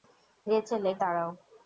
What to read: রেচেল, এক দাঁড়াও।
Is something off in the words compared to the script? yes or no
no